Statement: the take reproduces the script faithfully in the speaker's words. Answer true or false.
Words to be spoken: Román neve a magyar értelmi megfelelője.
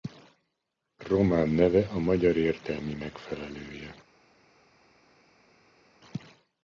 true